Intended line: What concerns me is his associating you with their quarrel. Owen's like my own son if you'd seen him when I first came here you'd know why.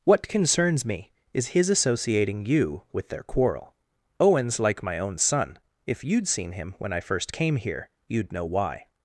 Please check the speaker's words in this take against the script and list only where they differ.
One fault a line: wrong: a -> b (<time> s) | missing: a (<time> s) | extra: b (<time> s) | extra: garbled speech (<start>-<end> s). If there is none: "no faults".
no faults